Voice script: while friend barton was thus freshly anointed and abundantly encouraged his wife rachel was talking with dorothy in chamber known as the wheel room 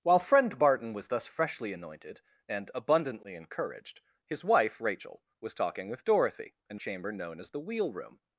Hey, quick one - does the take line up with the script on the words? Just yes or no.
yes